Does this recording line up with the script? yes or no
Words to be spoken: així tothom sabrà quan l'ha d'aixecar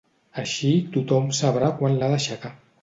yes